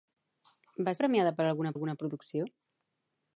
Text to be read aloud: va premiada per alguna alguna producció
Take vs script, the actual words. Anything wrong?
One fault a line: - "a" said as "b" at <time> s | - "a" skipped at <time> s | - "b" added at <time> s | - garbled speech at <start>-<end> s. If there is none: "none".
none